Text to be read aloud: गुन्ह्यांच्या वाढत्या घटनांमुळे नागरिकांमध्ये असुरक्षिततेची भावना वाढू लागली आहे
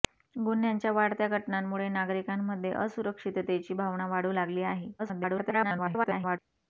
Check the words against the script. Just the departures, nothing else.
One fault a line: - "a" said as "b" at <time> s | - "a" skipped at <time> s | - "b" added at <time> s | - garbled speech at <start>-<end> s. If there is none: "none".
- garbled speech at 5.0-6.4 s